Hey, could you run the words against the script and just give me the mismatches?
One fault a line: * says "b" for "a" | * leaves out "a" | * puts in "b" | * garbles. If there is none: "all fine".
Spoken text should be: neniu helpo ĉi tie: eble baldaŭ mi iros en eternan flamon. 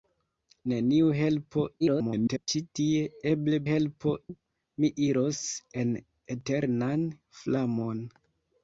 * garbles
* says "helpo" for "baldaŭ"